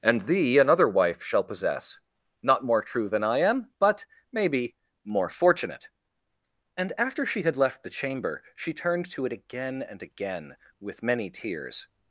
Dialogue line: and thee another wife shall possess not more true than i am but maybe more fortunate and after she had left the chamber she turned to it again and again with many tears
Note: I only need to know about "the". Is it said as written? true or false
true